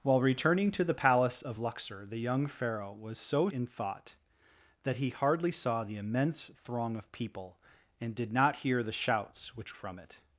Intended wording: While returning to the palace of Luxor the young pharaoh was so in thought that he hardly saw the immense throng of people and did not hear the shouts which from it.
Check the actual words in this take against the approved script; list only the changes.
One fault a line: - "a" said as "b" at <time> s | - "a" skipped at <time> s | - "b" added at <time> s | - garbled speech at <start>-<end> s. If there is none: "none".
none